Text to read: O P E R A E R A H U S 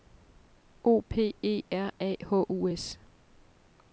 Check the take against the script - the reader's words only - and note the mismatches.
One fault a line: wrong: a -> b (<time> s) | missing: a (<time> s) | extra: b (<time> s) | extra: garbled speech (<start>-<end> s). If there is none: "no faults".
missing: E R A (2.1 s)